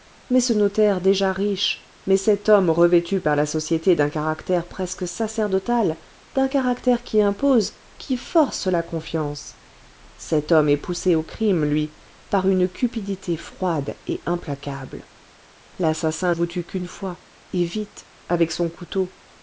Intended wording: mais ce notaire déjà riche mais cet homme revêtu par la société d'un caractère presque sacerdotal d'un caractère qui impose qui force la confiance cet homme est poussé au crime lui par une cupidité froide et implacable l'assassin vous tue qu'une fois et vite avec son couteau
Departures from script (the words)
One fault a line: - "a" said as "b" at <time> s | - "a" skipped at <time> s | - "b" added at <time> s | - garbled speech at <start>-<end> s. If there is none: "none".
none